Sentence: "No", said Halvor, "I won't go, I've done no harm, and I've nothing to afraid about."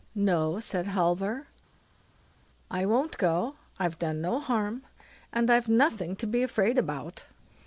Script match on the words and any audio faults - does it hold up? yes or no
no